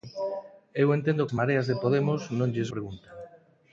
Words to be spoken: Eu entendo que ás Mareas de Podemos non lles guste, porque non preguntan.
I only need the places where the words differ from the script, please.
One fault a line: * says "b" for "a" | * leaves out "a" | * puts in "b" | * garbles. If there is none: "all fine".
* leaves out "que"
* leaves out "guste porque non"